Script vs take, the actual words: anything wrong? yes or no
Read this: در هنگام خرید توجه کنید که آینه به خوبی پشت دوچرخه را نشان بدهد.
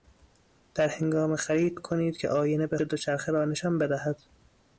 yes